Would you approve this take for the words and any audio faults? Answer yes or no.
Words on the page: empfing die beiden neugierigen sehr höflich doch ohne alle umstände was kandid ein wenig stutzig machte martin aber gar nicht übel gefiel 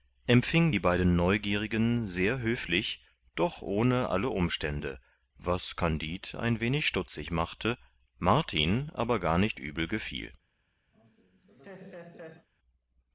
no